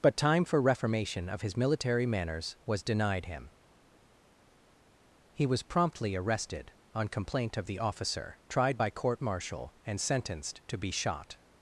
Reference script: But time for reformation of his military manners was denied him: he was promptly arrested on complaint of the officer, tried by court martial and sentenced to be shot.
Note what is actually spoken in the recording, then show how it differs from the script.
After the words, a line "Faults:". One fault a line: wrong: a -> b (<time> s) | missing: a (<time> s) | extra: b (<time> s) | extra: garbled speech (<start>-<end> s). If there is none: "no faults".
But time for reformation of his military manners was denied him: he was promptly arrested on complaint of the officer, tried by court martial and sentenced to be shot.
Faults:
no faults